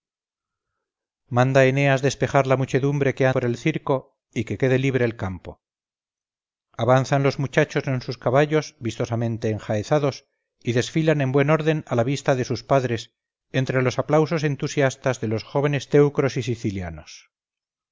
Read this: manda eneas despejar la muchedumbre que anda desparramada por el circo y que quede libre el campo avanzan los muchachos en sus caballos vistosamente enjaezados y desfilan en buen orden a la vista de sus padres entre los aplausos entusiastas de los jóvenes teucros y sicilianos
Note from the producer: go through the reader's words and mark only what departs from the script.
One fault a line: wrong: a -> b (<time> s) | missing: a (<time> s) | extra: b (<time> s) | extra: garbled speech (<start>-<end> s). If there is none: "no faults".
missing: anda desparramada (3.3 s)